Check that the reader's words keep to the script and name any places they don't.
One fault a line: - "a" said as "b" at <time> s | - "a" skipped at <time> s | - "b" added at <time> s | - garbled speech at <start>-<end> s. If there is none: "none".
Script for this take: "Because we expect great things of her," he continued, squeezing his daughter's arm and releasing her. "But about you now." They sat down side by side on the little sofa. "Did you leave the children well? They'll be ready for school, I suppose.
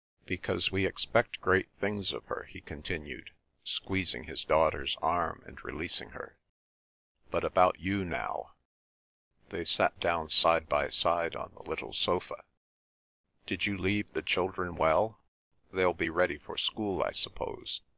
none